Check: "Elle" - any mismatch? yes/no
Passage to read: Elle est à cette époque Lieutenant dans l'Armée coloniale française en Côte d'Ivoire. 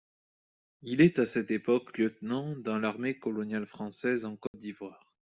yes